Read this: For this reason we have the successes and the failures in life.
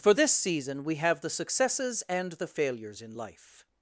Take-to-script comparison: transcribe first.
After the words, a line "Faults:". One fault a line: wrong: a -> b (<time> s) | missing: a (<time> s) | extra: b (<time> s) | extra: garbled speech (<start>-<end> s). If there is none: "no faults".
For this season we have the successes and the failures in life.
Faults:
wrong: reason -> season (0.3 s)